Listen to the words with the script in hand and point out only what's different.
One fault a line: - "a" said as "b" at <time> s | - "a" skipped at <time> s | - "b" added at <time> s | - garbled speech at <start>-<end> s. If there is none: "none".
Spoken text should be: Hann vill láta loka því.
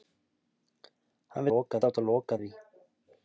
- "vill" said as "loka" at 1.5 s